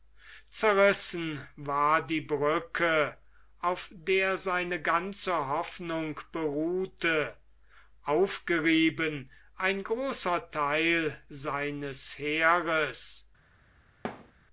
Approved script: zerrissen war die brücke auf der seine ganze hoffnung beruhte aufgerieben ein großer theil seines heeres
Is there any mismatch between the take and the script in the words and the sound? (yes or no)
yes